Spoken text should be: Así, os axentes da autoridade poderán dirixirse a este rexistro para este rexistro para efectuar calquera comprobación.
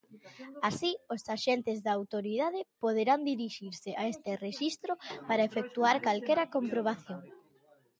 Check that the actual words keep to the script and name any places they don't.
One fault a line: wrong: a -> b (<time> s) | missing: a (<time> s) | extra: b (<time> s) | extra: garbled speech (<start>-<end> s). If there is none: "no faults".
missing: este rexistro para (5.5 s)